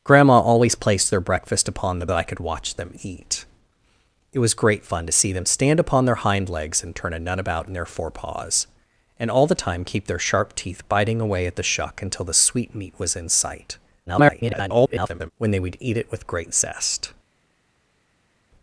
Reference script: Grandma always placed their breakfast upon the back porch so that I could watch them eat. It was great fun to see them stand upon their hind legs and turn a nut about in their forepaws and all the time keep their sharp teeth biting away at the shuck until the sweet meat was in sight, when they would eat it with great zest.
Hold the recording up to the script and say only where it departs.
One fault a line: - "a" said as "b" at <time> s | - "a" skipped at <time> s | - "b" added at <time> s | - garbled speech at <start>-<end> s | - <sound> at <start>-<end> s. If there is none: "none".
- "back porch so" skipped at 2.1 s
- garbled speech at 14.1-15.3 s